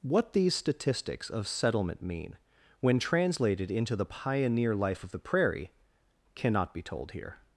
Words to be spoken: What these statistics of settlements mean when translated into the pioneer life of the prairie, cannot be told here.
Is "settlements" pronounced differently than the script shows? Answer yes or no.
yes